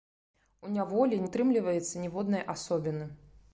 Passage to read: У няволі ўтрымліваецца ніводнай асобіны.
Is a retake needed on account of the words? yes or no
no